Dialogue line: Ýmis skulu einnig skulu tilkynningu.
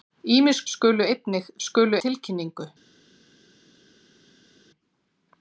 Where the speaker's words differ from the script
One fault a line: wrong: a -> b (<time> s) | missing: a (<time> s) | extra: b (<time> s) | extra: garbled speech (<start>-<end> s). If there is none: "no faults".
no faults